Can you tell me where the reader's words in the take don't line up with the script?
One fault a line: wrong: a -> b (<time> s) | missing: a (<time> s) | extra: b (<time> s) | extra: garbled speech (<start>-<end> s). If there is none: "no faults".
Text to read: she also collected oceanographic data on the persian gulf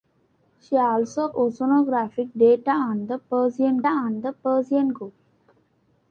missing: collected (1.3 s)
extra: on the persian (3.9 s)